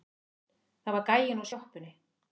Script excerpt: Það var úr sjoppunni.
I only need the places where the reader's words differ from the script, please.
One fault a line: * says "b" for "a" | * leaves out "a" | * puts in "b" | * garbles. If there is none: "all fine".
* puts in "gæinn"